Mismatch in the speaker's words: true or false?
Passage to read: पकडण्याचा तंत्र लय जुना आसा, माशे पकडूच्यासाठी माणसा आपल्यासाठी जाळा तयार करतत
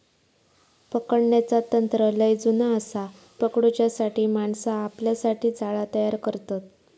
true